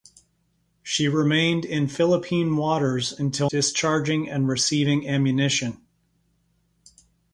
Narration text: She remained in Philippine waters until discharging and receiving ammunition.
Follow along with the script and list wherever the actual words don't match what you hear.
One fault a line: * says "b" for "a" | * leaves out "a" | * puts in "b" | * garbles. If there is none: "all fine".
all fine